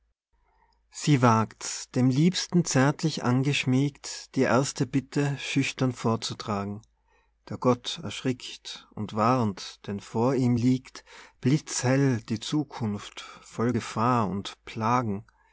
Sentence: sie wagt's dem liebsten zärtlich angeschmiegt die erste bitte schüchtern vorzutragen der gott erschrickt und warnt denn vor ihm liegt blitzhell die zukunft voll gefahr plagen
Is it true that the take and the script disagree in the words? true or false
true